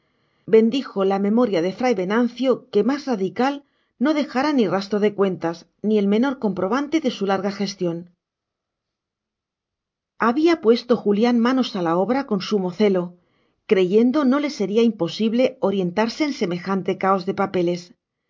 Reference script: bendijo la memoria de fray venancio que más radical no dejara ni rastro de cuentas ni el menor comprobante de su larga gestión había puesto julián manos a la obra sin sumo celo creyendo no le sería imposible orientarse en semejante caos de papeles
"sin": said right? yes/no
no